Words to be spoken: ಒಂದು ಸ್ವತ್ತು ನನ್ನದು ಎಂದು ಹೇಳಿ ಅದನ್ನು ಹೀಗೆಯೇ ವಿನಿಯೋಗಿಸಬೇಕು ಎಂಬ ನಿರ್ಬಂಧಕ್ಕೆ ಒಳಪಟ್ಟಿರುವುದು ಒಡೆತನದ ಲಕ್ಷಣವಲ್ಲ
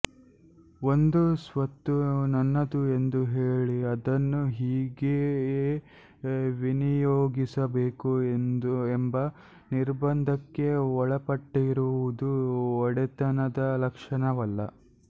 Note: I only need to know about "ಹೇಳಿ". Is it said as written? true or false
true